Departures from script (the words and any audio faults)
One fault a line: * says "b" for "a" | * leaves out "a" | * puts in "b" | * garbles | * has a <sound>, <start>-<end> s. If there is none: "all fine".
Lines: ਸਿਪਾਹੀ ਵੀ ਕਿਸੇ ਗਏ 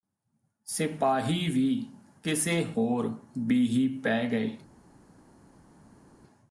* puts in "ਹੋਰ ਬੀਹੀ ਪੈ"